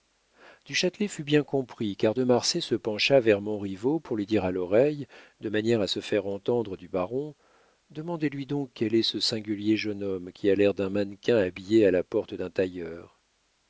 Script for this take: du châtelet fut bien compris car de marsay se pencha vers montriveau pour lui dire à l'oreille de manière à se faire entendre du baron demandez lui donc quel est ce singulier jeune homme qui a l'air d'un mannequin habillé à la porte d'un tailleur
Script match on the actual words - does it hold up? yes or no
yes